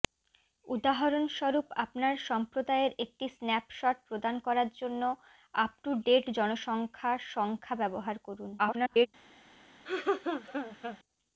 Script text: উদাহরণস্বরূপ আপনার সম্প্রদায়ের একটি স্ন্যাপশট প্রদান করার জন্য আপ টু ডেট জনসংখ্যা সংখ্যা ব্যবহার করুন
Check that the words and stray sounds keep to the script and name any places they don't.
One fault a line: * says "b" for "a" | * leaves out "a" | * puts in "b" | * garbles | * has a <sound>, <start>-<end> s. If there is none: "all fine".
* garbles
* has a laugh, 9.9-11.0 s